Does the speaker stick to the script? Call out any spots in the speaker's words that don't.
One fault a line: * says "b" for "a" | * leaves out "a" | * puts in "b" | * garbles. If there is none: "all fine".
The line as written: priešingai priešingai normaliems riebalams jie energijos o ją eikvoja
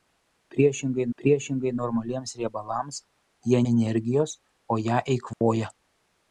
all fine